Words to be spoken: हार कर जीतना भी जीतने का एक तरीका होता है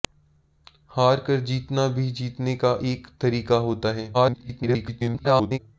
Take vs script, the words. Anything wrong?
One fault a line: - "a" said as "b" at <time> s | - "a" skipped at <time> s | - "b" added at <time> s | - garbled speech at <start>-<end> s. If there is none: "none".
- garbled speech at 4.1-5.6 s